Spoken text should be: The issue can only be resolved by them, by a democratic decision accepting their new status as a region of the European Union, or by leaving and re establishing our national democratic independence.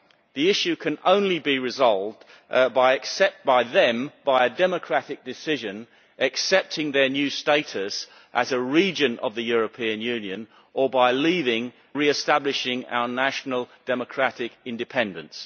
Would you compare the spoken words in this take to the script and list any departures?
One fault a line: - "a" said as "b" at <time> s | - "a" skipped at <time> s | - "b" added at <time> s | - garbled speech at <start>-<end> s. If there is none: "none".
- "and" skipped at 11.7 s